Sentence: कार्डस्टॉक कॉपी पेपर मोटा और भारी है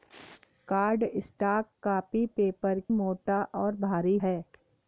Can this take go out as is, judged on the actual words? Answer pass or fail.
pass